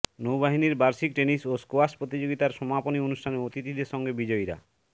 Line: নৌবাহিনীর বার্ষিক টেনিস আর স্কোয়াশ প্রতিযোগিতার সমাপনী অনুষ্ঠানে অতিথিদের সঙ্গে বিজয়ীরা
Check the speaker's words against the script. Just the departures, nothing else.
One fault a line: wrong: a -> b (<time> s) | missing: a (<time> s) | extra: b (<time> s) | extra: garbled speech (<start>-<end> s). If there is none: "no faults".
wrong: আর -> ও (1.5 s)